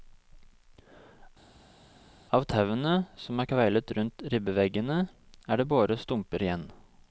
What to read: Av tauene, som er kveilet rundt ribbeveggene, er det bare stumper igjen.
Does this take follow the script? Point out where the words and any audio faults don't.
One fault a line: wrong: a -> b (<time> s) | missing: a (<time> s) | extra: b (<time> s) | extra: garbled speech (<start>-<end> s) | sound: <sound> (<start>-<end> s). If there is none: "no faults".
no faults